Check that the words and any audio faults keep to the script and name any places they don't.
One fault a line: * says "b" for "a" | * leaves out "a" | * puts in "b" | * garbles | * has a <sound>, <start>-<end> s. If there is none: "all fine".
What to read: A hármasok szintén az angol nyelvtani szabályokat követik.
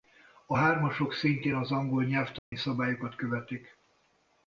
* has a dropout, 2.4-2.5 s